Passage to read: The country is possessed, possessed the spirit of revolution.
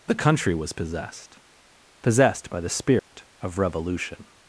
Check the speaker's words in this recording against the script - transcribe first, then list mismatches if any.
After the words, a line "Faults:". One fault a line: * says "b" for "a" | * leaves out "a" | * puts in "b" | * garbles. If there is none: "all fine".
The country was possessed, possessed by the spirit of revolution.
Faults:
* says "was" for "is"
* puts in "by"